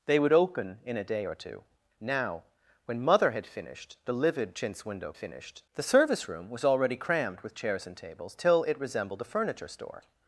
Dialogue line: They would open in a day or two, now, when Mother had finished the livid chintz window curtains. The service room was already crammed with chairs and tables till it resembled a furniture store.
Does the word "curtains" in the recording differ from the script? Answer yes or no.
yes